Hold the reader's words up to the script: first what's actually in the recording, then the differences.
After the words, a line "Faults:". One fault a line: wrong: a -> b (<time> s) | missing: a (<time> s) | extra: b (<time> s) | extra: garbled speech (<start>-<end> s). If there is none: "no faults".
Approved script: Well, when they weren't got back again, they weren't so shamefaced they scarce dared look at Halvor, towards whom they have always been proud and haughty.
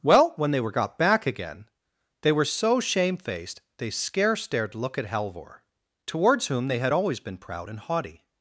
Well, when they were got back again, they were so shamefaced they scarce dared look at Halvor, towards whom they had always been proud and haughty.
Faults:
wrong: weren't -> were (0.6 s)
wrong: weren't -> were (2.3 s)
wrong: have -> had (6.8 s)